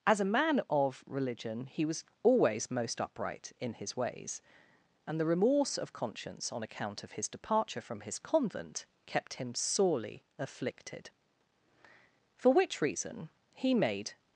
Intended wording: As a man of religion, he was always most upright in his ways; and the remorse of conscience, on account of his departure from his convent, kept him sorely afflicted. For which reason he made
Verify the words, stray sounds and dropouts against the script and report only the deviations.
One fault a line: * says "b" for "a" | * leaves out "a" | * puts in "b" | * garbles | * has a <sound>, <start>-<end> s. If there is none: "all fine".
all fine